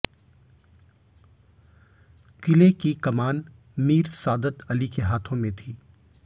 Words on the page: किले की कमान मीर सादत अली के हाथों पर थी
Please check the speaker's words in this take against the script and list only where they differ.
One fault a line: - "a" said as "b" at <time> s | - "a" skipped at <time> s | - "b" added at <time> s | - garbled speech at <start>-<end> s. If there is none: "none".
- "पर" said as "में" at 5.4 s